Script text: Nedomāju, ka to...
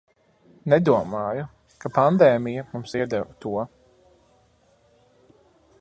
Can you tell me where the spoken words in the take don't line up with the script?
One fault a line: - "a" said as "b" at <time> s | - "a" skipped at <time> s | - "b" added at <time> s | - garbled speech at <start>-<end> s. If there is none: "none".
- "pandēmija mums iedeva" added at 2.0 s